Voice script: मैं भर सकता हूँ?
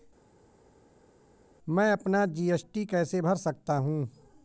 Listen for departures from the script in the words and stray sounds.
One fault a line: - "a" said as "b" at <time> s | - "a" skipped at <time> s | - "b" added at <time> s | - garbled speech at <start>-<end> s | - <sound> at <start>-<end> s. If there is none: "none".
- "अपना जी.एस.टी कैसे" added at 1.9 s